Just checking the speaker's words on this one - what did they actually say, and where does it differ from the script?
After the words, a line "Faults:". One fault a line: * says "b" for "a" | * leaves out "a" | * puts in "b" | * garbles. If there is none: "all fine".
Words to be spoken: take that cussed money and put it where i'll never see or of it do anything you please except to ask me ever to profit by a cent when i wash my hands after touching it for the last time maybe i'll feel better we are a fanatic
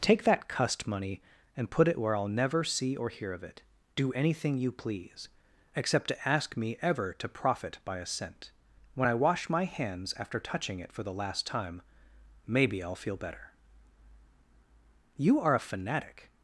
take that cussed money and put it where i'll never see or hear of it do anything you please except to ask me ever to profit by a cent when i wash my hands after touching it for the last time maybe i'll feel better you are a fanatic
Faults:
* puts in "hear"
* says "you" for "we"